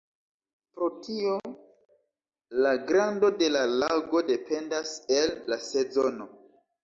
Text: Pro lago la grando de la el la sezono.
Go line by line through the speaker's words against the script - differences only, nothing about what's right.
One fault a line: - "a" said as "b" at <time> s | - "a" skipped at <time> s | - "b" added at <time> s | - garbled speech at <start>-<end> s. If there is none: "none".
- "lago" said as "tio" at 1.1 s
- "lago dependas" added at 3.8 s